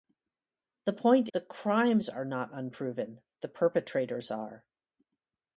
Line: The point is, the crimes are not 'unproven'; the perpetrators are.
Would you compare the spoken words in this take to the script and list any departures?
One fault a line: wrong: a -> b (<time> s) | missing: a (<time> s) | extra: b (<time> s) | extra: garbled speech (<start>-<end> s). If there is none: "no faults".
missing: is (1.3 s)